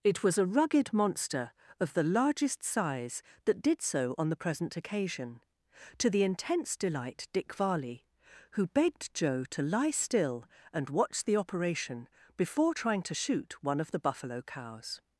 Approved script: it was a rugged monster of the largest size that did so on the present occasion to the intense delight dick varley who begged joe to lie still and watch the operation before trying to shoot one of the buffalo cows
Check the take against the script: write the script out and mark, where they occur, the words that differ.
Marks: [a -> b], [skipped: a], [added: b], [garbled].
it was a rugged monster of the largest size that did so on the present occasion to the intense delight dick varley who begged joe to lie still and watch the operation before trying to shoot one of the buffalo cows